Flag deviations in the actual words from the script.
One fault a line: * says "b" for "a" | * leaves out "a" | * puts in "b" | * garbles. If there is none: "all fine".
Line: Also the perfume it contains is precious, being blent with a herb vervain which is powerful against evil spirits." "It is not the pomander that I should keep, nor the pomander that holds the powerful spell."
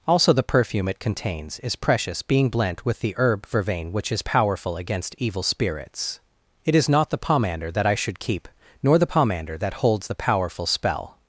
* says "the" for "a"